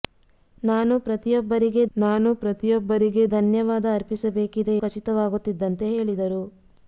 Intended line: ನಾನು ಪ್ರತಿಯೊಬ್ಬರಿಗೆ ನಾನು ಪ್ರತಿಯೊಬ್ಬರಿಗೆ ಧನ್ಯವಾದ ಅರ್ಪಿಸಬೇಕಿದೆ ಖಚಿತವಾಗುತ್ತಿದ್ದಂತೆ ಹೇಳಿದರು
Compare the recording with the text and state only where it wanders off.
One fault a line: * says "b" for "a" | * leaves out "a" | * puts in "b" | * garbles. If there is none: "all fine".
all fine